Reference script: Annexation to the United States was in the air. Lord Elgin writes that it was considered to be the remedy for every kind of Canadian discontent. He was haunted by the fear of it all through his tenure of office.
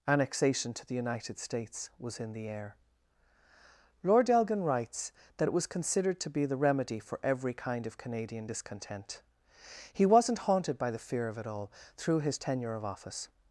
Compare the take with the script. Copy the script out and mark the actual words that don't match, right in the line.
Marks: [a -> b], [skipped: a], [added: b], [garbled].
Annexation to the United States was in the air. Lord Elgin writes that it was considered to be the remedy for every kind of Canadian discontent. He [was -> wasn't] haunted by the fear of it all through his tenure of office.